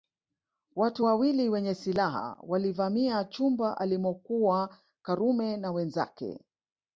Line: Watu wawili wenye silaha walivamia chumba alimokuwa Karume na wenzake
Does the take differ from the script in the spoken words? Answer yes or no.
no